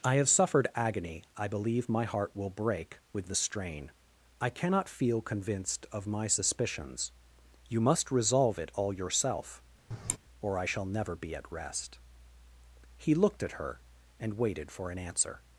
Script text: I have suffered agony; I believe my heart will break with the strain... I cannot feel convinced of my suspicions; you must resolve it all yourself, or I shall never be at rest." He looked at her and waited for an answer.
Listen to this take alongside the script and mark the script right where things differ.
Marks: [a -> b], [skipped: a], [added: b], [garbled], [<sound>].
I have suffered agony; I believe my heart will break with the strain... I cannot feel convinced of my suspicions; you must resolve it all yourself, [sigh] or I shall never be at rest." He looked at her and waited for an answer.